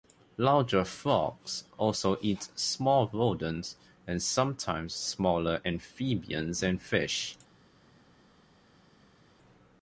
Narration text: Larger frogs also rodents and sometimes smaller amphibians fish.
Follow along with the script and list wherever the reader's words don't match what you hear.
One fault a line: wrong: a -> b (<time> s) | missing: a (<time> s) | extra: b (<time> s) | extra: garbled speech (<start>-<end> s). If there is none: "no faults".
extra: eat small (2.2 s)
extra: and (6.6 s)